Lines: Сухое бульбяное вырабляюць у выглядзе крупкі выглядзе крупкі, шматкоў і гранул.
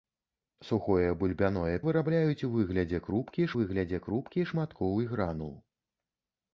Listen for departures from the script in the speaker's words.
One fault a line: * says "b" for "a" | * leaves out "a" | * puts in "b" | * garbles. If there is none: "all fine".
all fine